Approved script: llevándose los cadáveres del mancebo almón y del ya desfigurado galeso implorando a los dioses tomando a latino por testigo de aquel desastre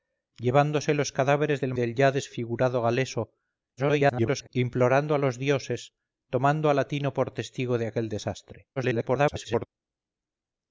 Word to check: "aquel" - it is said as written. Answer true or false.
true